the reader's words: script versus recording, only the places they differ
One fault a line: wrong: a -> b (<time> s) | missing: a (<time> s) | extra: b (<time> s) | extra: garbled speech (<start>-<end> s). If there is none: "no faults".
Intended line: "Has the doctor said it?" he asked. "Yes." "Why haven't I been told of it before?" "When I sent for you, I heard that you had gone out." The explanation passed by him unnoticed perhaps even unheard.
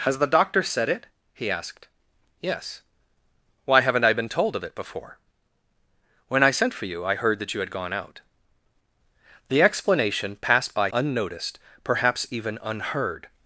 missing: him (10.9 s)